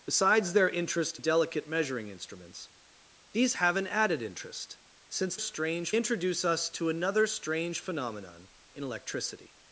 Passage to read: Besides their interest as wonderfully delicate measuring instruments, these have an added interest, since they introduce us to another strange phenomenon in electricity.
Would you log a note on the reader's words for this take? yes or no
yes